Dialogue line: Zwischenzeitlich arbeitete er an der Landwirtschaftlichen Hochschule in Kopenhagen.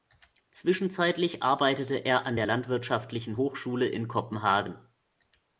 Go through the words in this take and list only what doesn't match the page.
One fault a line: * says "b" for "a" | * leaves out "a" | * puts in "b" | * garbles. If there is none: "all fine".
all fine